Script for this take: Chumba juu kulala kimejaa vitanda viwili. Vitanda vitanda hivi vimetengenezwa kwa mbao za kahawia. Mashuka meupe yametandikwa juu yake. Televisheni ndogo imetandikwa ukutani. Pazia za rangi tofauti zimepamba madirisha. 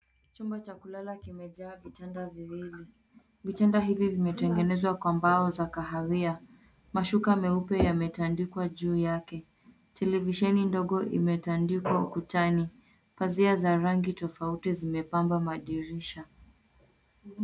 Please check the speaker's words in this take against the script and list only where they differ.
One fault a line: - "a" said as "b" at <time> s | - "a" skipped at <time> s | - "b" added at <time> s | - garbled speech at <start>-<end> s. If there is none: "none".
- "juu" said as "cha" at 0.6 s
- "vitanda" skipped at 3.8 s